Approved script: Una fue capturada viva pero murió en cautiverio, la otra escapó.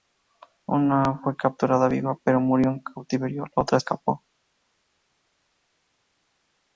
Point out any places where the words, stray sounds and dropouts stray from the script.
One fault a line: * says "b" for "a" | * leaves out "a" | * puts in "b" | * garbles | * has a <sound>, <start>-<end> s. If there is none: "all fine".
all fine